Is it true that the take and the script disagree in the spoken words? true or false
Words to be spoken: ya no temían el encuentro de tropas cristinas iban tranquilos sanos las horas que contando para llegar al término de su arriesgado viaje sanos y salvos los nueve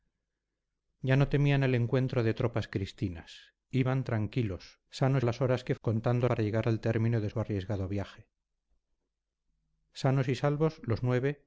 false